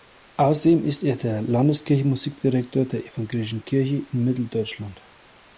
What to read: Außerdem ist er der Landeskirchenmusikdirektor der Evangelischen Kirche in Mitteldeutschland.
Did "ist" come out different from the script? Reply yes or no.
no